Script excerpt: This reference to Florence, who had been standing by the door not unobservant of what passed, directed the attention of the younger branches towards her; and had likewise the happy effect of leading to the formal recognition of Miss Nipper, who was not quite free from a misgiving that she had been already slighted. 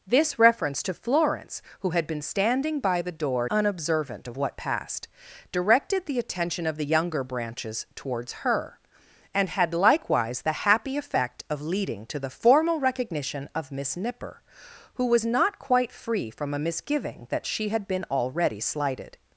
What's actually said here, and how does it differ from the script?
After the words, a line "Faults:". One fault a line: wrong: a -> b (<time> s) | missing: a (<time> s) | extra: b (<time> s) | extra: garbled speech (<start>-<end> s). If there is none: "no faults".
This reference to Florence, who had been standing by the door unobservant of what passed, directed the attention of the younger branches towards her; and had likewise the happy effect of leading to the formal recognition of Miss Nipper, who was not quite free from a misgiving that she had been already slighted.
Faults:
missing: not (3.5 s)